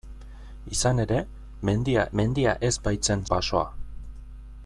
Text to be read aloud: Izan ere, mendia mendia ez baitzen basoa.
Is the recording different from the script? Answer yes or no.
no